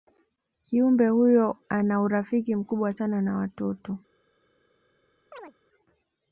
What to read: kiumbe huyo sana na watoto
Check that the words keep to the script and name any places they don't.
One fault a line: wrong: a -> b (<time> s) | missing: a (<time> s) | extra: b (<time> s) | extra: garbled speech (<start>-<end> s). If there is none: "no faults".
extra: ana urafiki mkubwa (1.7 s)